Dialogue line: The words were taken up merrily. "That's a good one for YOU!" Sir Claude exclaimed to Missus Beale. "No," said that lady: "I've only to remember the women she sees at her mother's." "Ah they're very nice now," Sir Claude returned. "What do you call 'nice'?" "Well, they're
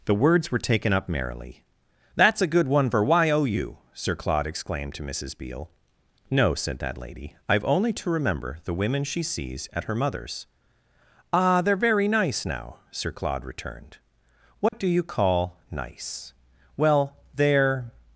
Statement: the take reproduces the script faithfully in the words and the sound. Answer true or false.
false